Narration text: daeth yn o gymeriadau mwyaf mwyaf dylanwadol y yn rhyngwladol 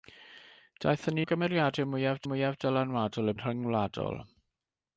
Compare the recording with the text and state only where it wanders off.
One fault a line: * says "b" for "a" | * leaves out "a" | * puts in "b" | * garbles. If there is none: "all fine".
all fine